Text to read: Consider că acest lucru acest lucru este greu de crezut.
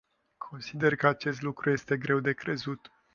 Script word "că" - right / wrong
right